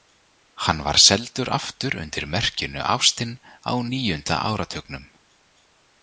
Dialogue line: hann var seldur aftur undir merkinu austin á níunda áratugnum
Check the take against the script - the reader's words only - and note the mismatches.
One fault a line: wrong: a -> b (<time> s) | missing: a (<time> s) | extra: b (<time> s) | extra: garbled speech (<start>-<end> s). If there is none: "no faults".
no faults